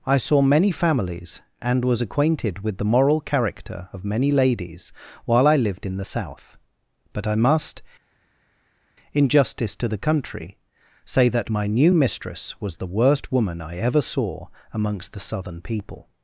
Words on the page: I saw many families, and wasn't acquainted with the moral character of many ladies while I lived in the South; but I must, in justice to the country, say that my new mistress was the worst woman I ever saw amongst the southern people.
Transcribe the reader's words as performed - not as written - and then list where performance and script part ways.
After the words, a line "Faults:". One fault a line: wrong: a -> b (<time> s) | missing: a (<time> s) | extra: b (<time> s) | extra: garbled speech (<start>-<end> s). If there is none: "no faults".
I saw many families, and was acquainted with the moral character of many ladies while I lived in the South; but I must, in justice to the country, say that my new mistress was the worst woman I ever saw amongst the southern people.
Faults:
wrong: wasn't -> was (1.9 s)